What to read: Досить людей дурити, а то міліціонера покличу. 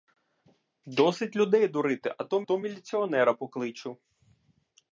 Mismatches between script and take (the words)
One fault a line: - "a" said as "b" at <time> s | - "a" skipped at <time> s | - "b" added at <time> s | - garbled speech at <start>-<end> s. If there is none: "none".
- "то" added at 2.4 s